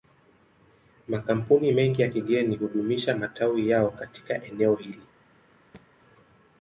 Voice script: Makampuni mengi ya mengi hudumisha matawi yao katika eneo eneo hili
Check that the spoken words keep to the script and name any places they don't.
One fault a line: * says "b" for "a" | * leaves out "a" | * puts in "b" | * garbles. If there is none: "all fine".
* says "kigeni" for "mengi"
* leaves out "eneo"